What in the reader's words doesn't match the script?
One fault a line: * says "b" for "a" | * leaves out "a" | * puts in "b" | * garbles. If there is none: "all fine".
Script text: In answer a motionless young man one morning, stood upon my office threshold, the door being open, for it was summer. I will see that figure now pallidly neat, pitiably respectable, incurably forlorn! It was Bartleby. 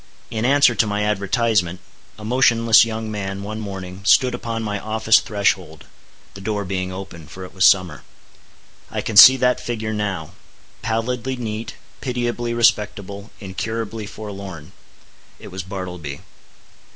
* puts in "to my advertisement"
* says "can" for "will"